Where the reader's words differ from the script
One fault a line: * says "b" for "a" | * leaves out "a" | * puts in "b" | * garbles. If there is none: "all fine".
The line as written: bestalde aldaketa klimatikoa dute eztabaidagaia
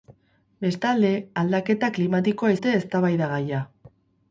all fine